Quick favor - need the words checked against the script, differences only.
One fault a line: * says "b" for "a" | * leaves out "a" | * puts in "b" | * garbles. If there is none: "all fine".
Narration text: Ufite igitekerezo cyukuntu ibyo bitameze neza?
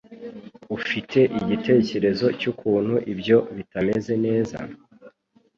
all fine